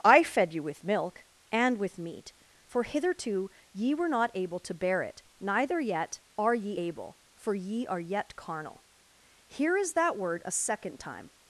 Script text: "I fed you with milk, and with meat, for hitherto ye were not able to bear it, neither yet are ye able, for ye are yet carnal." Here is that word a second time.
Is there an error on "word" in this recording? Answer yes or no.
no